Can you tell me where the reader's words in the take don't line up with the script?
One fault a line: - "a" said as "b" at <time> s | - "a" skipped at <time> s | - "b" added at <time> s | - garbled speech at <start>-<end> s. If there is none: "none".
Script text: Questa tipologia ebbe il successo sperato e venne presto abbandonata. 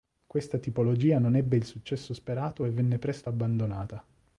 - "non" added at 1.2 s